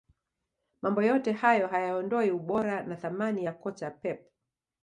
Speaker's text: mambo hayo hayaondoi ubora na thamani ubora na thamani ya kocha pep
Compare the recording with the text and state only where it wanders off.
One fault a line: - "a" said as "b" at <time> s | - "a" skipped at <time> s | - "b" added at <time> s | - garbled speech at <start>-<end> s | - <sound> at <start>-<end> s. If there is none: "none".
- "yote" added at 1.0 s
- "ubora na thamani" skipped at 3.5 s